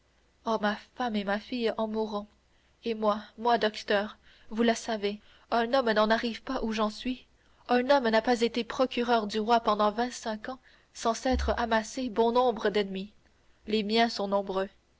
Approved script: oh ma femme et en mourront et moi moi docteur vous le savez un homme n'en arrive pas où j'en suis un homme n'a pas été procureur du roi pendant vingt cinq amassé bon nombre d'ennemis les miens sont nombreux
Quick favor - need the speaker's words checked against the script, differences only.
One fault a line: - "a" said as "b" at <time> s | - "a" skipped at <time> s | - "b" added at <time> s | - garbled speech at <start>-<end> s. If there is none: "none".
- "ma fille" added at 1.2 s
- "ans sans s'être" added at 10.5 s